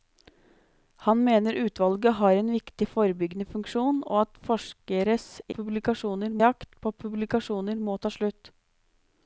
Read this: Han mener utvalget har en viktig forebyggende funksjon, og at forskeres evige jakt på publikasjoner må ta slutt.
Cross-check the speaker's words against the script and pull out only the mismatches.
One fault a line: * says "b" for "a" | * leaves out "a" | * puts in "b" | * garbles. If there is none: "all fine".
* says "publikasjoner" for "evige"